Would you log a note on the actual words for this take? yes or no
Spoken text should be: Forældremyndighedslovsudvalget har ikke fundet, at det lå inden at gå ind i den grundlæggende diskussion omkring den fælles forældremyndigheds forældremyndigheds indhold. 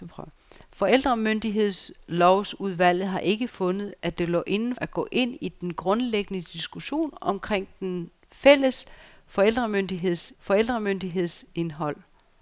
no